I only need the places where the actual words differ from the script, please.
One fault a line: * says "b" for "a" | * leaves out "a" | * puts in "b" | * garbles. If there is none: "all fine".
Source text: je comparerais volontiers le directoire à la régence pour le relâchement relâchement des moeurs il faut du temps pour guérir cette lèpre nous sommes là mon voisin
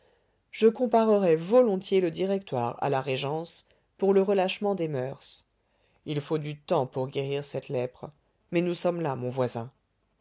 * leaves out "relâchement"
* puts in "mais"